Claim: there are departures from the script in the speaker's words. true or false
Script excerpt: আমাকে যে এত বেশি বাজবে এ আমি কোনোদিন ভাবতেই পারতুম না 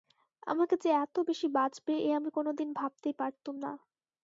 false